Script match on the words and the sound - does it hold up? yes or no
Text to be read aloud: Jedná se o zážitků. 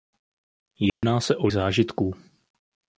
no